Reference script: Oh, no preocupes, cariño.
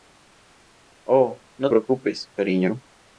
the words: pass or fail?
pass